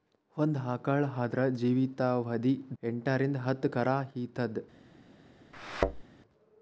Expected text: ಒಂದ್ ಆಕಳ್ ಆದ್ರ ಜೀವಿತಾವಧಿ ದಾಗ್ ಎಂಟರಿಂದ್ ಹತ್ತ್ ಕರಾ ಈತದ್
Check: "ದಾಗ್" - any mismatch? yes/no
yes